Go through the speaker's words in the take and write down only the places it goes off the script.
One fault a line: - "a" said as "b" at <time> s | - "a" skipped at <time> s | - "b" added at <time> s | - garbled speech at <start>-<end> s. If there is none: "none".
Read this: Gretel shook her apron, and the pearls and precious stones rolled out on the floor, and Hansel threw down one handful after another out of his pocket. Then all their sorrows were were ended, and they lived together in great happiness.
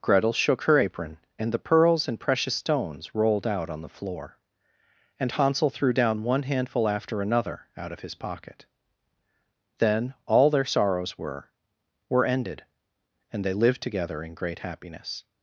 none